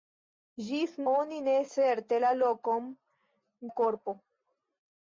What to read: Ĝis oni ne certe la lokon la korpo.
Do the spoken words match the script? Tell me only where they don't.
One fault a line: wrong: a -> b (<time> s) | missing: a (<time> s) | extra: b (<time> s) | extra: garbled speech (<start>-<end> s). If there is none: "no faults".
no faults